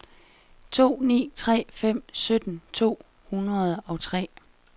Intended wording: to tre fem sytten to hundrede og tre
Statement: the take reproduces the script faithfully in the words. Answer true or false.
false